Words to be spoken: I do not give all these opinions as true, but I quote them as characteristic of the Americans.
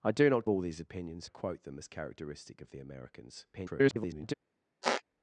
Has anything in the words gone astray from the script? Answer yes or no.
yes